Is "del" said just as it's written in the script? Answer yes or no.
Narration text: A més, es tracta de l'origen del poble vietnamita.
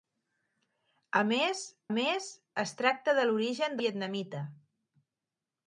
no